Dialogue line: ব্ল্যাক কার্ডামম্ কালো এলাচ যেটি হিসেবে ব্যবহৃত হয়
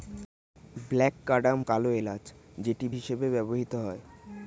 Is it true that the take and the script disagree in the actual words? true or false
false